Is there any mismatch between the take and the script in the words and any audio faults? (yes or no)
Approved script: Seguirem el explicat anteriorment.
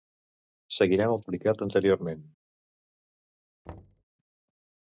yes